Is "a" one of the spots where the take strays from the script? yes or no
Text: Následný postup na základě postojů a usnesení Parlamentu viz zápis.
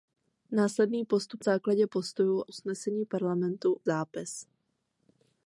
yes